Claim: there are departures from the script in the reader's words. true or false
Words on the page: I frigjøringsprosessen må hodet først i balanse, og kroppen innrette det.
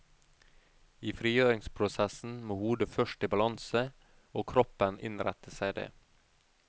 true